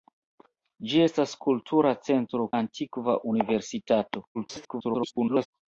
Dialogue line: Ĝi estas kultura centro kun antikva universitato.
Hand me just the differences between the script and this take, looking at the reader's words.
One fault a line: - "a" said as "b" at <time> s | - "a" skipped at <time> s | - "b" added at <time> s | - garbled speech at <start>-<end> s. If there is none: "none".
- "kun" skipped at 2.5 s
- garbled speech at 4.3-5.5 s